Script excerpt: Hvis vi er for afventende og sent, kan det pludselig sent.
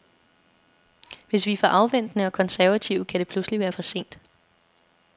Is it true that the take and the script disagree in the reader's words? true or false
true